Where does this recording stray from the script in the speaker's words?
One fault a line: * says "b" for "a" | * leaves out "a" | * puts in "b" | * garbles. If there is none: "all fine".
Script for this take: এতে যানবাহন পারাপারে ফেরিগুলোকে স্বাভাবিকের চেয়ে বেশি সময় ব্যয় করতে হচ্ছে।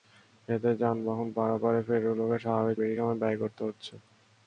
* leaves out "চেয়ে"